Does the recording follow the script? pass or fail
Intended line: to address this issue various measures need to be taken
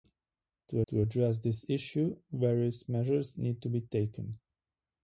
fail